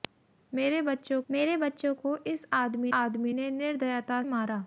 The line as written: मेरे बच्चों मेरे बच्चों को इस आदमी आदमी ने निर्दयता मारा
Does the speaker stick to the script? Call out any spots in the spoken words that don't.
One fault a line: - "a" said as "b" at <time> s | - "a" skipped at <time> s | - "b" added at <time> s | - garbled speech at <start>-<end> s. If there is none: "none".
none